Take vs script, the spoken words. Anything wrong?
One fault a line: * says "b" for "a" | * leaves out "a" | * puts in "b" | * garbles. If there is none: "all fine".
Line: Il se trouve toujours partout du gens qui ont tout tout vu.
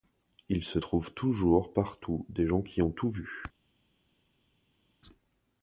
* says "des" for "du"
* leaves out "tout"